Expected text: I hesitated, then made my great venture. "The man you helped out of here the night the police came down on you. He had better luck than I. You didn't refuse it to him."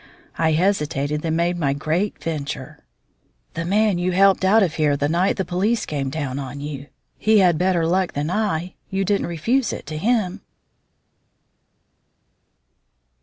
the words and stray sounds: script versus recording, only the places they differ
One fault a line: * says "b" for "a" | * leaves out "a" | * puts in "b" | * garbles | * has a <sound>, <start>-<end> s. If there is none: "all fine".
all fine